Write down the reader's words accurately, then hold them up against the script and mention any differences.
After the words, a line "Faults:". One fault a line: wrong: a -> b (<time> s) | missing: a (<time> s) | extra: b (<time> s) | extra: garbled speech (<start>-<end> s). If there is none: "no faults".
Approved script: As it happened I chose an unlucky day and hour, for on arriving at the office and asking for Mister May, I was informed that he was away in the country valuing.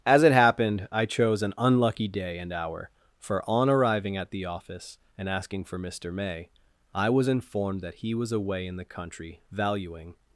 As it happened I chose an unlucky day and hour, for on arriving at the office and asking for Mister May, I was informed that he was away in the country valuing.
Faults:
no faults